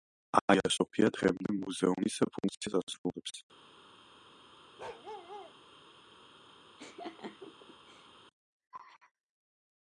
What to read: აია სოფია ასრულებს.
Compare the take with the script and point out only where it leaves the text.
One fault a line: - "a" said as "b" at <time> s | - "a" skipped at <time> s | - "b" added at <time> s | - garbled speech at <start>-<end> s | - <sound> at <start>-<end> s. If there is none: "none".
- "დღემდე მუზეუმის ფუნქციას" added at 1.2 s
- bark at 4.8-5.5 s
- laugh at 6.8-8.1 s